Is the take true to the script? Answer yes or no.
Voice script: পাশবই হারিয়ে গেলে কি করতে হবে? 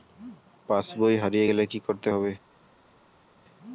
yes